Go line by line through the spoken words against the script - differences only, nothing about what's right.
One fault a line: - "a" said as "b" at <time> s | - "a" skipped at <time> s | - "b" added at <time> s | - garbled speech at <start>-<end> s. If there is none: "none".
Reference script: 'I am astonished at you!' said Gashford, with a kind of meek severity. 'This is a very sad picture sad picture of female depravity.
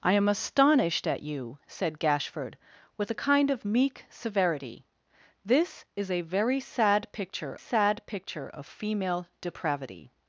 none